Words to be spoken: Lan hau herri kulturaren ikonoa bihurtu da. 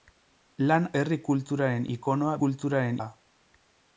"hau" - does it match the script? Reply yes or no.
no